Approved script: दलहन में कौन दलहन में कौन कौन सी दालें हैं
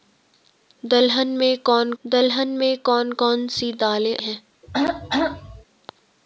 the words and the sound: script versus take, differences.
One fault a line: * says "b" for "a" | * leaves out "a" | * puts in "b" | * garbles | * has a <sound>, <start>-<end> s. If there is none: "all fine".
* has a throat clearing, 4.6-5.6 s